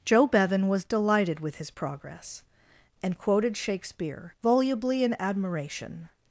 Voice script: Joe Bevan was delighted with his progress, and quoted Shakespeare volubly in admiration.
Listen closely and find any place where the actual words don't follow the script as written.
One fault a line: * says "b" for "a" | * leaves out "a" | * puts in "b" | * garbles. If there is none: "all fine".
all fine